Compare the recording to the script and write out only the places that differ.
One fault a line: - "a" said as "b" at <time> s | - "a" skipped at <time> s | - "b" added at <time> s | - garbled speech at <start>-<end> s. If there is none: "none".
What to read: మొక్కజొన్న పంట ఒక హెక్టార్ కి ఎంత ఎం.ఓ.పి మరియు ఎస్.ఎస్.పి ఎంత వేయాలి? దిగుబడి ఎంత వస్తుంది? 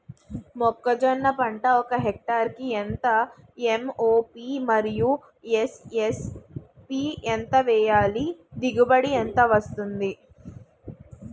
none